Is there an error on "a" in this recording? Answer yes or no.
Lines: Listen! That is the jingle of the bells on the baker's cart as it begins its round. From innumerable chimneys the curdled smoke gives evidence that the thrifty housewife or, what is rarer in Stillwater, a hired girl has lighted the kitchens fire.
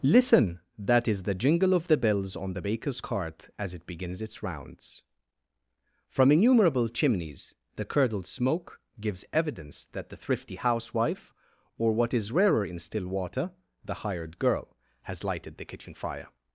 yes